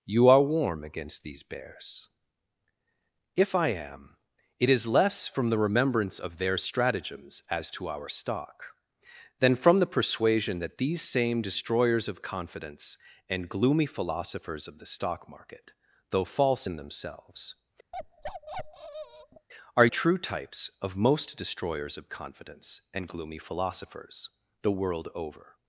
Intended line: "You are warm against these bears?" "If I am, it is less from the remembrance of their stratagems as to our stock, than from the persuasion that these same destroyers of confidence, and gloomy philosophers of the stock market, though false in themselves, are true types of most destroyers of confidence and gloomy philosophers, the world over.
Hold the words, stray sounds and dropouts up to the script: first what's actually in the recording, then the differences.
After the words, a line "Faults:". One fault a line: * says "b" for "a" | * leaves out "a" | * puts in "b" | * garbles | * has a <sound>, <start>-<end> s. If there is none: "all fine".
"You are warm against these bears?" "If I am, it is less from the remembrance of their stratagems as to our stock, than from the persuasion that these same destroyers of confidence, and gloomy philosophers of the stock market, though false in themselves, are true types of most destroyers of confidence and gloomy philosophers, the world over.
Faults:
* has a bark, 17.9-19.5 s